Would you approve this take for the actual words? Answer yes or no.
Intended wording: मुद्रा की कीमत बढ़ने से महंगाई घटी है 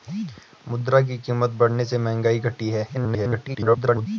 no